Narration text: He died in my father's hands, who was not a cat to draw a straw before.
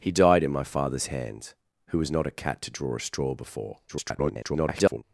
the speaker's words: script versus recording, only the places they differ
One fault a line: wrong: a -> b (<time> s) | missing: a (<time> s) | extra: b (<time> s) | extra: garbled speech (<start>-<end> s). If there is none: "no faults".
extra: garbled speech (3.9-5.0 s)